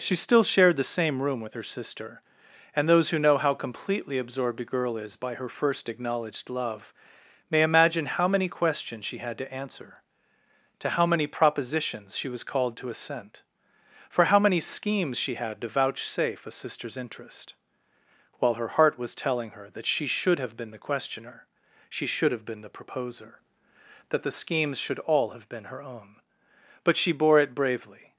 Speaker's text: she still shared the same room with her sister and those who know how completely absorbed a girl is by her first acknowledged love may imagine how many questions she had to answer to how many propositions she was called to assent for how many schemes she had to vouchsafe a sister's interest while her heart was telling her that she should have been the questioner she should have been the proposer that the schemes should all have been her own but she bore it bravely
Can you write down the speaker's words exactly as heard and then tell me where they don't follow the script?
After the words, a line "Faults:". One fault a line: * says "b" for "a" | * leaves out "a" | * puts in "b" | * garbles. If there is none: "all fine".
she still shared the same room with her sister and those who know how completely absorbed a girl is by her first acknowledged love may imagine how many questions she had to answer to how many propositions she was called to assent for how many schemes she had to vouchsafe a sister's interest while her heart was telling her that she should have been the questioner she should have been the proposer that the schemes should all have been her own but she bore it bravely
Faults:
all fine